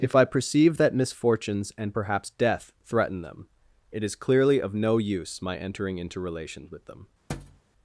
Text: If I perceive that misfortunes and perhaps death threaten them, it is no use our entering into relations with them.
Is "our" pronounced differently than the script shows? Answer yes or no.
yes